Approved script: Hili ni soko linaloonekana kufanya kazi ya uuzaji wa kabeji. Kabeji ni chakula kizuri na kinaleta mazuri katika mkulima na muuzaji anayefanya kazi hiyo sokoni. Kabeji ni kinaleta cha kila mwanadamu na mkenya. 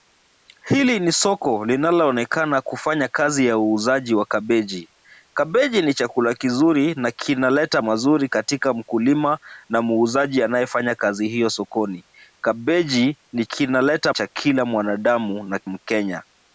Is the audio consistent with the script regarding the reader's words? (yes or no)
yes